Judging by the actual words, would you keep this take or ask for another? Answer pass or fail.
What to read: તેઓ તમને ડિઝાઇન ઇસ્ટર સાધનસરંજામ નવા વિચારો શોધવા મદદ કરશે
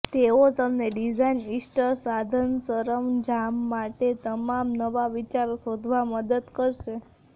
fail